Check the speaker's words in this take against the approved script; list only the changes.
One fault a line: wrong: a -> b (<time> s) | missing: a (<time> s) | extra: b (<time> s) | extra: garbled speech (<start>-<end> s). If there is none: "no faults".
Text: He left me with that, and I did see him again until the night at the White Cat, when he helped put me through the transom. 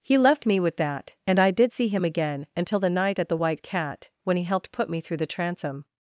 no faults